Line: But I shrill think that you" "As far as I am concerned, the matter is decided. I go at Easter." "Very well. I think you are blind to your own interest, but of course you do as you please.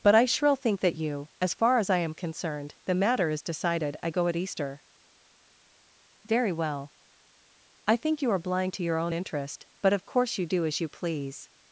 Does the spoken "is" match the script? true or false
true